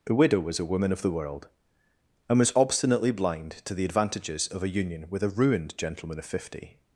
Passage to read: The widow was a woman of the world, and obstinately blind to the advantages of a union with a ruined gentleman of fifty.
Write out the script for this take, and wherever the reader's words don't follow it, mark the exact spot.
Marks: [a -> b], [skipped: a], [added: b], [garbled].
The widow was a woman of the world, and [added: was] obstinately blind to the advantages of a union with a ruined gentleman of fifty.